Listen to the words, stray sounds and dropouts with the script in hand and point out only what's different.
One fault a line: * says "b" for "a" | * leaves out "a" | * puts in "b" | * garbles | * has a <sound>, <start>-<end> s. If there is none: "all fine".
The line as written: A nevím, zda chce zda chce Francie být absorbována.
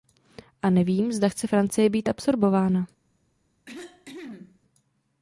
* leaves out "zda chce"
* has a cough, 3.7-4.6 s